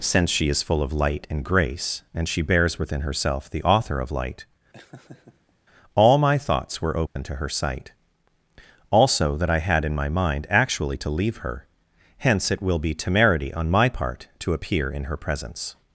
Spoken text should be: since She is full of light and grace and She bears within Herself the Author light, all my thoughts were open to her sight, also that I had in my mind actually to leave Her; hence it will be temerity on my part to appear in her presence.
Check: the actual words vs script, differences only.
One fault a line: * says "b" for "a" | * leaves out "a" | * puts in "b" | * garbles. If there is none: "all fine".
* puts in "of"